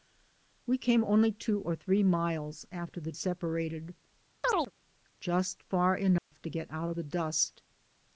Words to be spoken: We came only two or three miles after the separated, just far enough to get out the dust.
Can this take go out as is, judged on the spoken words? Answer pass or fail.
pass